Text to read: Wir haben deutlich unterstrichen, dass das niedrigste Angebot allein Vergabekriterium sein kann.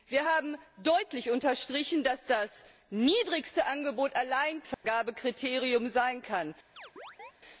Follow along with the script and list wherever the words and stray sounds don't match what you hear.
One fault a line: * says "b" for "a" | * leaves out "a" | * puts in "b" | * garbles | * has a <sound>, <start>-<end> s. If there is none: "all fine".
* has a dropout, 4.7-4.8 s
* has a chirp, 6.8-7.3 s